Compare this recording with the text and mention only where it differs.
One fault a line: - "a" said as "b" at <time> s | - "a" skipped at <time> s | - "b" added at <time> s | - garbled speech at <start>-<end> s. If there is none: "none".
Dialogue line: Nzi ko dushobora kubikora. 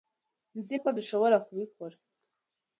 none